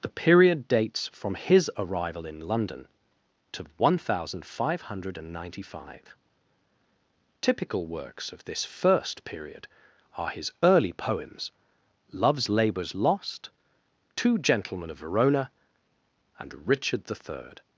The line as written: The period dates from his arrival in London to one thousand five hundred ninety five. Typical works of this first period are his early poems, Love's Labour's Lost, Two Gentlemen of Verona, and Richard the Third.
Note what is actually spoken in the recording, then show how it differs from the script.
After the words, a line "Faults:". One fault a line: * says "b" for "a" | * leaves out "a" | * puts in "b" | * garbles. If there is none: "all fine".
The period dates from his arrival in London to one thousand five hundred ninety five. Typical works of this first period are his early poems, Love's Labour's Lost, Two Gentlemen of Verona, and Richard the Third.
Faults:
all fine